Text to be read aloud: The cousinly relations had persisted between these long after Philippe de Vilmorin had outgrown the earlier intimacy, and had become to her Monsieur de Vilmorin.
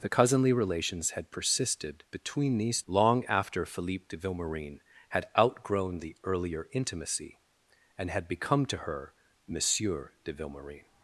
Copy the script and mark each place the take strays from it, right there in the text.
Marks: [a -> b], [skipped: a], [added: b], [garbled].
The cousinly relations had persisted between these long after Philippe de Vilmorin had outgrown the earlier intimacy, and had become to her Monsieur de Vilmorin.